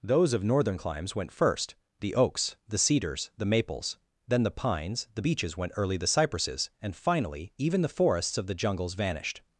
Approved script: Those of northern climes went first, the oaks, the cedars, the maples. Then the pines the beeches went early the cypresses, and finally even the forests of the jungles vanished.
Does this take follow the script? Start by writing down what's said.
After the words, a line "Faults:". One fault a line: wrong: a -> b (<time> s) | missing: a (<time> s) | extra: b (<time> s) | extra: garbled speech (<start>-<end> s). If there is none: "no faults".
Those of northern climes went first, the oaks, the cedars, the maples. Then the pines the beeches went early the cypresses, and finally even the forests of the jungles vanished.
Faults:
no faults